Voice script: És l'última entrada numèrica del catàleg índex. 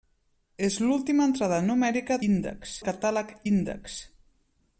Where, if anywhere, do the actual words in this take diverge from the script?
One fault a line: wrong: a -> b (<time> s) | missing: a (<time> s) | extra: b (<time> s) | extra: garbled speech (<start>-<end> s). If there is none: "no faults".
wrong: del -> índex (2.3 s)